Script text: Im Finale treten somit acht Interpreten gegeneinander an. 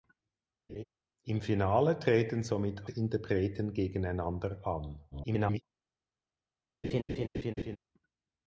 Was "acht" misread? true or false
true